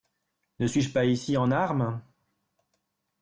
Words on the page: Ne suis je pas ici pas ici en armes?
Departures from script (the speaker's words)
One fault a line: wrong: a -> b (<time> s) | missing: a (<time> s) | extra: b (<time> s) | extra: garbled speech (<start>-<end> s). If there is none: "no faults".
missing: pas ici (1.4 s)